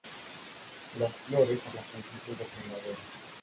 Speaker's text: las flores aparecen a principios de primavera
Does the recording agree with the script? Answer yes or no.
no